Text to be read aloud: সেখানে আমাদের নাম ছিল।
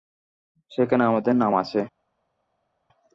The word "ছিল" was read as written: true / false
false